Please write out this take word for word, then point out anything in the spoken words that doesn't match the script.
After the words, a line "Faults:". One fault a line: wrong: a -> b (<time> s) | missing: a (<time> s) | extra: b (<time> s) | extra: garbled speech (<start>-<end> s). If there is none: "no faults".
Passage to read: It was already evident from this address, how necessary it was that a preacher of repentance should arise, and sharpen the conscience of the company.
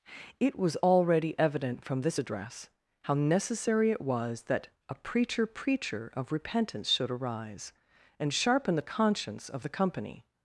It was already evident from this address, how necessary it was that a preacher preacher of repentance should arise, and sharpen the conscience of the company.
Faults:
extra: preacher (5.5 s)